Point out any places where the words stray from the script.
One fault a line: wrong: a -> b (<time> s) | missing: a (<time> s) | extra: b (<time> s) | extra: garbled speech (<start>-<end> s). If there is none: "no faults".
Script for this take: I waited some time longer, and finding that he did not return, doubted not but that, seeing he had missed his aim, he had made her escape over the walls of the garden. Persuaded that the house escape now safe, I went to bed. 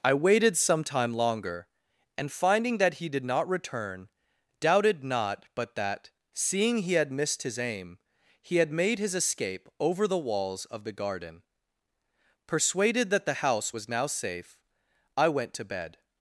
wrong: her -> his (9.0 s)
wrong: escape -> was (13.7 s)